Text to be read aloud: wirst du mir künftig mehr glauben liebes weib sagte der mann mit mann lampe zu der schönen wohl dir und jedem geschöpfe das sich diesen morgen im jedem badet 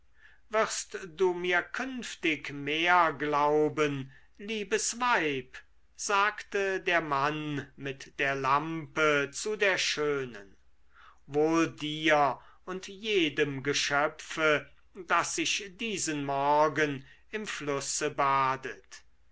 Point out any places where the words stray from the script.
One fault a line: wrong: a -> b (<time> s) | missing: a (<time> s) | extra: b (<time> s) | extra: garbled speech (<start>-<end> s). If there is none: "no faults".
wrong: mann -> der (8.2 s)
wrong: jedem -> flusse (17.5 s)